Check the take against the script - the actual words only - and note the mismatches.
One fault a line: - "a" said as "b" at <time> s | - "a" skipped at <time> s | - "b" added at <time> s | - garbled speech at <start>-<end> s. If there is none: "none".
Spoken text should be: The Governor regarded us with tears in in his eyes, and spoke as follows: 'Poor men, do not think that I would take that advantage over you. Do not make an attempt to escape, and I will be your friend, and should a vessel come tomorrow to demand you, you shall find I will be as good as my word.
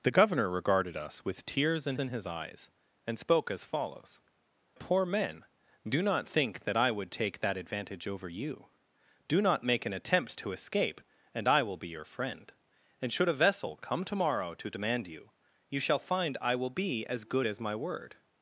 none